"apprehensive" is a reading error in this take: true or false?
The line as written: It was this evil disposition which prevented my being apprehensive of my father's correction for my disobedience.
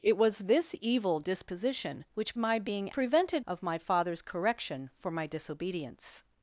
true